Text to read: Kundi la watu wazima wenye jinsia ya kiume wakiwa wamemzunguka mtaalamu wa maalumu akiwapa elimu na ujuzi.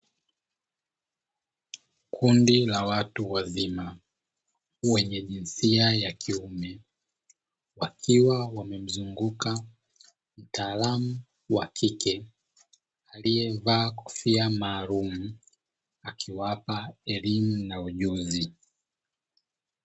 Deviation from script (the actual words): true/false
true